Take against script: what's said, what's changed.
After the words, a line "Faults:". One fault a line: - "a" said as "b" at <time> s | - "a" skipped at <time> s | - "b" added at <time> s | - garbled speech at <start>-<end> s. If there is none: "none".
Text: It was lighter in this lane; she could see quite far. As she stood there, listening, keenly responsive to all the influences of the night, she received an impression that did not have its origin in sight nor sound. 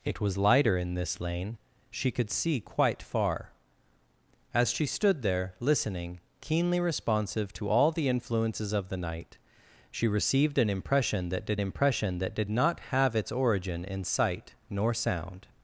It was lighter in this lane; she could see quite far. As she stood there, listening, keenly responsive to all the influences of the night, she received an impression that did impression that did not have its origin in sight nor sound.
Faults:
- "impression that did" added at 11.6 s